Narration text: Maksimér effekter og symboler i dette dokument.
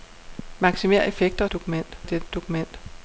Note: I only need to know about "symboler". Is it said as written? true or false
false